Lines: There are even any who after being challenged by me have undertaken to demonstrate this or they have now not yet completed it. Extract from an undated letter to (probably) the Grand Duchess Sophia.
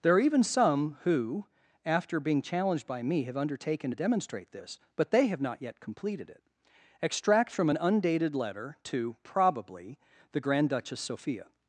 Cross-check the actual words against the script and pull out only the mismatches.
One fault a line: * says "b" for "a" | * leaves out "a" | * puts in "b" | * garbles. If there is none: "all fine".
* says "some" for "any"
* says "but" for "or"
* leaves out "now"